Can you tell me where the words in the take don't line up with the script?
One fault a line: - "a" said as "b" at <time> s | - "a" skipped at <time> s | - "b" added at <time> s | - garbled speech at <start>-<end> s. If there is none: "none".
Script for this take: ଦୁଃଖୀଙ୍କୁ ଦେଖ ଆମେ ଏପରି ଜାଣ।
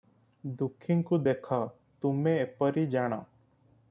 - "ଆମେ" said as "ତୁମେ" at 2.0 s